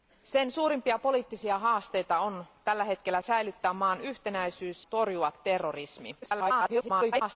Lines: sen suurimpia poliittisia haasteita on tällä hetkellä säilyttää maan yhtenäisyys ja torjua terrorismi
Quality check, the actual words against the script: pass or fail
fail